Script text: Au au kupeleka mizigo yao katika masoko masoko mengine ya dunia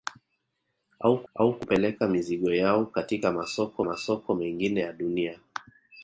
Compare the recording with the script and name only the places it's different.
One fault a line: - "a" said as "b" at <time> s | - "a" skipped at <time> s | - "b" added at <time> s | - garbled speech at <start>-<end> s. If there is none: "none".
none